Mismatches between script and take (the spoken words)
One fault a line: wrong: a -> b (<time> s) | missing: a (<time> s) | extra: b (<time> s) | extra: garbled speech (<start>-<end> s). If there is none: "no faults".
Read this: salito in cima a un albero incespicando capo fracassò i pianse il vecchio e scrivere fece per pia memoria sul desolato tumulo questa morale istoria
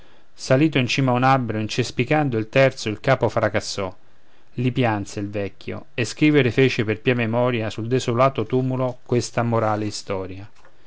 extra: il terzo il (2.4 s)